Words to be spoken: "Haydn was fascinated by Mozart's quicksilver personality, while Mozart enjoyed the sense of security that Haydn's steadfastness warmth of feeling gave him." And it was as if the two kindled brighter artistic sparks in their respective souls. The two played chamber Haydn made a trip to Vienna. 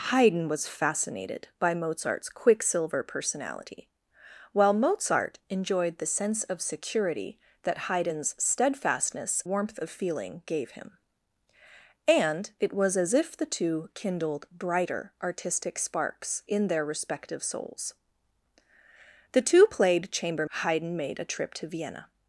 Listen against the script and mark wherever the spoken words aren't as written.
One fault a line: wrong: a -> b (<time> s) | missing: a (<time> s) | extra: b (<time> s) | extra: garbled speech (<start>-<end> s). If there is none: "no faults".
no faults